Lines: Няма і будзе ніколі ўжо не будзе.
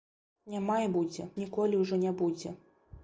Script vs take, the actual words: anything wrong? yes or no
no